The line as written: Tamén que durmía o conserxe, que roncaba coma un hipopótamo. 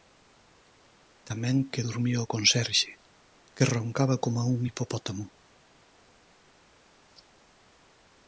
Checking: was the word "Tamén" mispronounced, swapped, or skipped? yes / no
no